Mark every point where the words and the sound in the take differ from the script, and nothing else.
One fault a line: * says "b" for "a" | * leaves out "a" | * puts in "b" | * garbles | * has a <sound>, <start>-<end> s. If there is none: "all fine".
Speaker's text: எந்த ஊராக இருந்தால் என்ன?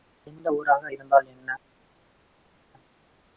all fine